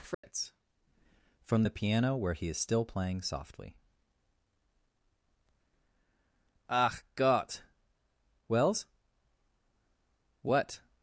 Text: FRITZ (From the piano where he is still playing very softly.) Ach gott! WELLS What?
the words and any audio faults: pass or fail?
fail